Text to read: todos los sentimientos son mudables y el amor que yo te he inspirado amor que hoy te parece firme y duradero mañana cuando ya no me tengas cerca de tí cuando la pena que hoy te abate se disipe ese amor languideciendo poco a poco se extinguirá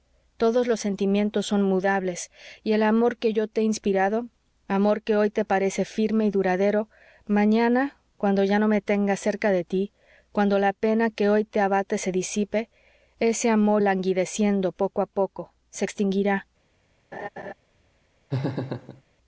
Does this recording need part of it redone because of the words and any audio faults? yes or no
yes